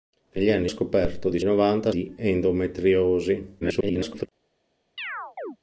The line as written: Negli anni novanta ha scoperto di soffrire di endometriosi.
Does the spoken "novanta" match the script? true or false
false